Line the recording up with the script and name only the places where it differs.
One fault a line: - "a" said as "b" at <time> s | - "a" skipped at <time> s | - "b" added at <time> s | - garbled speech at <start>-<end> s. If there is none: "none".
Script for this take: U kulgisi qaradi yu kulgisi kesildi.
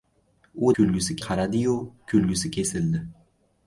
none